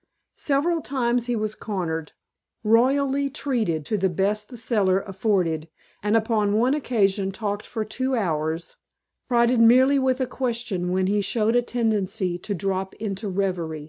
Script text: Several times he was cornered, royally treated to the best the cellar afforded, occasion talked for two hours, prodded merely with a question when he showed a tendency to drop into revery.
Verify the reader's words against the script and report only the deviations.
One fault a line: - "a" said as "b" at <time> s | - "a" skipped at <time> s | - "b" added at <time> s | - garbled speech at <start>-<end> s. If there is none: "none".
- "and upon one" added at 6.0 s